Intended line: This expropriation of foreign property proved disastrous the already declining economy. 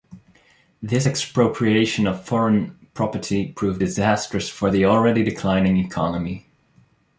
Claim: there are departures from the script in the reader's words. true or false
true